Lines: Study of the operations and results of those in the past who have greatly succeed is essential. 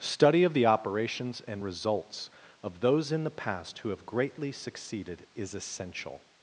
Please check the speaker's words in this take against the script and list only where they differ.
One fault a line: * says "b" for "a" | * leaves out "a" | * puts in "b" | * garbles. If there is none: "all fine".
* says "succeeded" for "succeed"